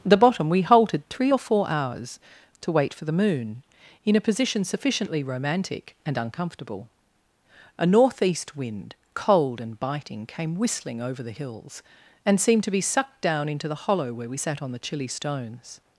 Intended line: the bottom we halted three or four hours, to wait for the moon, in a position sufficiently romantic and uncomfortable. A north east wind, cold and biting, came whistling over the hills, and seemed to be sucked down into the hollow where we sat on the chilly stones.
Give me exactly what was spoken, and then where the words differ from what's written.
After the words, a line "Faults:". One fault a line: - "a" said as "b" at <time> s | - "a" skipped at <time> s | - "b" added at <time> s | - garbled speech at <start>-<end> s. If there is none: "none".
the bottom we halted three or four hours, to wait for the moon, in a position sufficiently romantic and uncomfortable. A north east wind, cold and biting, came whistling over the hills, and seemed to be sucked down into the hollow where we sat on the chilly stones.
Faults:
none